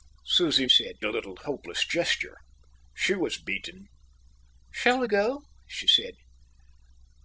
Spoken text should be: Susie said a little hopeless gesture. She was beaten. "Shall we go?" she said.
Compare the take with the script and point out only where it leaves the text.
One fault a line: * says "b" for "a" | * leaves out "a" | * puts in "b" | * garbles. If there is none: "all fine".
all fine